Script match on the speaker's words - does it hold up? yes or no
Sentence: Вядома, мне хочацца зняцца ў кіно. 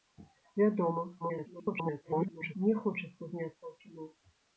no